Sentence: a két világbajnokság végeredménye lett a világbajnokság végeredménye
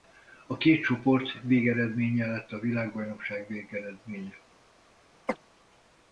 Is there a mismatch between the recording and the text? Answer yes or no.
yes